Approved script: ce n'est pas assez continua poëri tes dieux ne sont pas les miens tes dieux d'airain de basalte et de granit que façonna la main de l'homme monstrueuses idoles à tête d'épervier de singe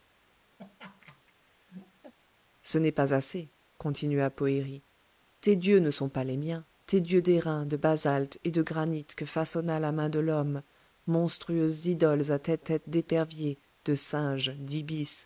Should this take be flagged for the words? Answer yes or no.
yes